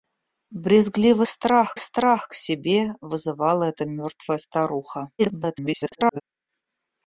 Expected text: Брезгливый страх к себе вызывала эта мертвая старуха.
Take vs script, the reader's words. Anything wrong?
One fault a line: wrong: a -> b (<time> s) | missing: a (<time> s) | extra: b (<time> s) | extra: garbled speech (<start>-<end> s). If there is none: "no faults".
extra: страх (1.8 s)
extra: garbled speech (5.2-6.2 s)